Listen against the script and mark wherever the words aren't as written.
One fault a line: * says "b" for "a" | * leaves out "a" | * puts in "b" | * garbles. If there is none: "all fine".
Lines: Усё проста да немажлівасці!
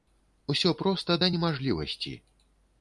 all fine